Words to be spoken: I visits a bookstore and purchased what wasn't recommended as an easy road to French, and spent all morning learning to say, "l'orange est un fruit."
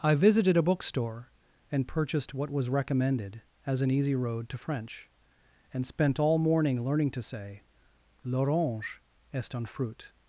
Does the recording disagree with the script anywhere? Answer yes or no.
yes